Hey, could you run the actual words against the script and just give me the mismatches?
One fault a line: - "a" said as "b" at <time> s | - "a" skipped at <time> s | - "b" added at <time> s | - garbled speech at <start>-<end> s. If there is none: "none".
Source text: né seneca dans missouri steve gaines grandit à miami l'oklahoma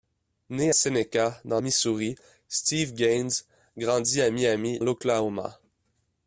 none